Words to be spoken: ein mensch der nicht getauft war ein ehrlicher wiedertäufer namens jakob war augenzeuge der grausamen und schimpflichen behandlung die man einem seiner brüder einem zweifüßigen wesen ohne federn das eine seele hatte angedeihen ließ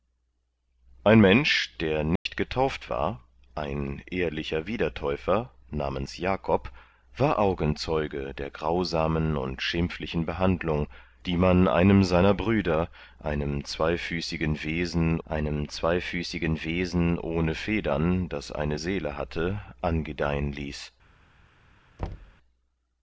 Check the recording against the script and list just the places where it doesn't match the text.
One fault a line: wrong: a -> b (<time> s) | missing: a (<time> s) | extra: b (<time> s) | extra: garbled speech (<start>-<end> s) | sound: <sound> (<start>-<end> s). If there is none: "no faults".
sound: dropout (2.2-2.3 s)
extra: einem zweifüßigen wesen (15.2 s)
sound: thud (22.0-22.4 s)